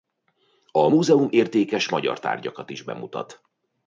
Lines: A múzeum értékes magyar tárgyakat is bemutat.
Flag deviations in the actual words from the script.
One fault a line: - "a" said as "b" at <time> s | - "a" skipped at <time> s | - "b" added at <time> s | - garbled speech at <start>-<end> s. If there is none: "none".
none